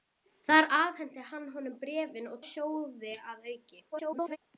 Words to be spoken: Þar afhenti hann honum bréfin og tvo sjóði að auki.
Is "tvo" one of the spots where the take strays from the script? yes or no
yes